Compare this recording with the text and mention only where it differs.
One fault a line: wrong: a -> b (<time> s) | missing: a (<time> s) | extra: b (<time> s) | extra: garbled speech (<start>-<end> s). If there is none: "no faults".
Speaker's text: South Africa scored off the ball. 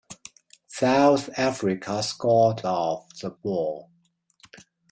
no faults